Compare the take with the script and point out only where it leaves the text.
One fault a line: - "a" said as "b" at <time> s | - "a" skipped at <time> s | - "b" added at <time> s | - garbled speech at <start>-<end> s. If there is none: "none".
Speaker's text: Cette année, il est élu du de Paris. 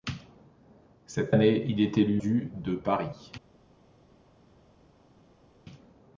none